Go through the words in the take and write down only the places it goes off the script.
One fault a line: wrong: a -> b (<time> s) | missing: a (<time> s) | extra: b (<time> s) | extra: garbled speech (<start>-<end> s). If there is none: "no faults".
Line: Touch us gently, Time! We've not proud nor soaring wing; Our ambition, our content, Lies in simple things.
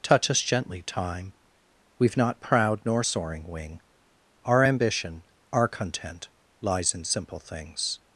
no faults